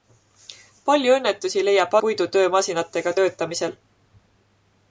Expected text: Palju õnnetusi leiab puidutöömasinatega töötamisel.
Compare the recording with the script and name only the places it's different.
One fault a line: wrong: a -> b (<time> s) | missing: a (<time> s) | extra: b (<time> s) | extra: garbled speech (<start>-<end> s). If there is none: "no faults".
no faults